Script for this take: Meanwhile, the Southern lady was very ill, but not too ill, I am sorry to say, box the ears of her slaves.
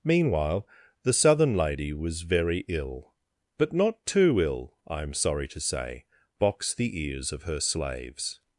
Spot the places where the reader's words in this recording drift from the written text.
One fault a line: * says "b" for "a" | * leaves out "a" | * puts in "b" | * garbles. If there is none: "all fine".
all fine